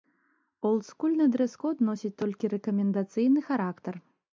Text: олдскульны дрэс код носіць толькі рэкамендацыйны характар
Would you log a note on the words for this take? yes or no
no